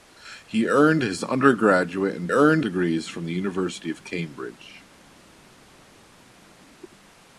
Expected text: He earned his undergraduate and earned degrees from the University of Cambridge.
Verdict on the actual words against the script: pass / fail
pass